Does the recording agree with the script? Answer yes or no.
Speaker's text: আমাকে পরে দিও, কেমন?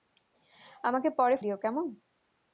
yes